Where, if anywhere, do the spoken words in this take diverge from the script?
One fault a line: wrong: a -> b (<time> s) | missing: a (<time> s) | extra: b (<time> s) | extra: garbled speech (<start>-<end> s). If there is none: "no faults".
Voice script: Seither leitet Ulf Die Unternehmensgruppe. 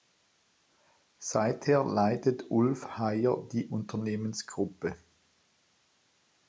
extra: Heyer (3.0 s)